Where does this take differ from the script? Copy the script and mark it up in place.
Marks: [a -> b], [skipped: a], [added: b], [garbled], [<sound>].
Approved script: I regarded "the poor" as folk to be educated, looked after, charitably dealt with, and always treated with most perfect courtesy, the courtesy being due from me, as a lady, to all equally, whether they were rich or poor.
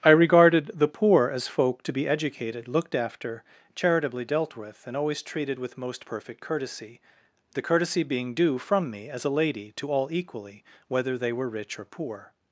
I regarded "the poor" as folk to be educated, looked after, charitably dealt with, and always treated with most perfect courtesy, the courtesy being due from me, as a lady, to all equally, whether they were rich or poor.